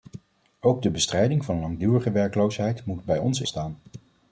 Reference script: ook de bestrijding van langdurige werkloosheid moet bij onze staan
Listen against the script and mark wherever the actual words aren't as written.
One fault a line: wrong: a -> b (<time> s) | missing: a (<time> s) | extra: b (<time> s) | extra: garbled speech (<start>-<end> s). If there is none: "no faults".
no faults